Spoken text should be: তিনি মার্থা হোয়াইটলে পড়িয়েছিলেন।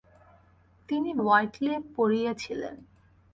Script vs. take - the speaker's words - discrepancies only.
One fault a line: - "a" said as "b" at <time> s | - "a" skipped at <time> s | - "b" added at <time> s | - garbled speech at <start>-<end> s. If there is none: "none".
- "মার্থা" skipped at 1.1 s